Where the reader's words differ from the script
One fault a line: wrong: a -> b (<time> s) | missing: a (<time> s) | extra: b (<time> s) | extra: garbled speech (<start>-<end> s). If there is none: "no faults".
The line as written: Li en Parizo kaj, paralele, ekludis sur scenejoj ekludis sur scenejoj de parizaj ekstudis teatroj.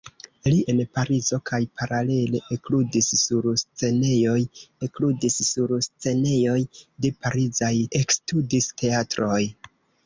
no faults